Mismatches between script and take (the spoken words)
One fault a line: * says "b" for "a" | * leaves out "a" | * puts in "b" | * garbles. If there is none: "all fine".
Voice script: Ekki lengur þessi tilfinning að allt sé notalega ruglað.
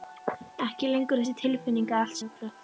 * leaves out "sé notalega"